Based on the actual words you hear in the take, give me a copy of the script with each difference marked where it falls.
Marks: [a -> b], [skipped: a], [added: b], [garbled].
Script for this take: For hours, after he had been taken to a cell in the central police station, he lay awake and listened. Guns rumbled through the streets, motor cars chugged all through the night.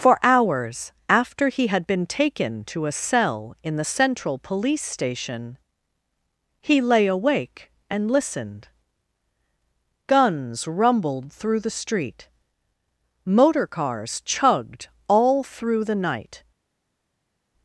For hours, after he had been taken to a cell in the central police station, he lay awake and listened. Guns rumbled through the [streets, -> street] motor cars chugged all through the night.